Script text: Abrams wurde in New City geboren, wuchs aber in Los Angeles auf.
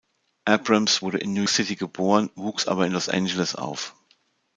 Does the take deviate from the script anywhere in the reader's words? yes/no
no